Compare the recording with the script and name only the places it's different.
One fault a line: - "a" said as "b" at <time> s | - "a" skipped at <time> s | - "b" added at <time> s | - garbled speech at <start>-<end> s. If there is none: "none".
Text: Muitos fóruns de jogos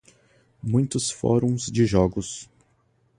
none